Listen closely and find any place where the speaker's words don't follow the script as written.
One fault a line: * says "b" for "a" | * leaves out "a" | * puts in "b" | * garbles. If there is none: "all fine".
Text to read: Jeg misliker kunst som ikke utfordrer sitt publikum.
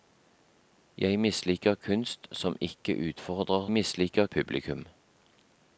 * says "misliker" for "sitt"